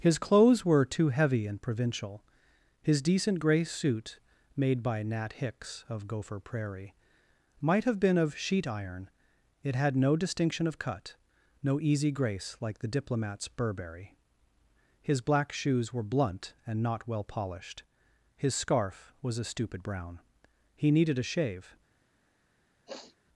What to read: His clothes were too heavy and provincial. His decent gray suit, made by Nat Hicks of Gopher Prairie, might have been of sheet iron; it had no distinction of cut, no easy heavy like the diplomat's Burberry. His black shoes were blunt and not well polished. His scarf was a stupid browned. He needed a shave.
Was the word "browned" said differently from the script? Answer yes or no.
yes